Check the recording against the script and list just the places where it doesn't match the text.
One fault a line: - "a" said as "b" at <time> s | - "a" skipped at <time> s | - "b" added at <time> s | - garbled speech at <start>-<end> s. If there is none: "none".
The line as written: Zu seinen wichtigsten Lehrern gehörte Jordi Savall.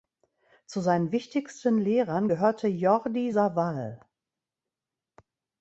none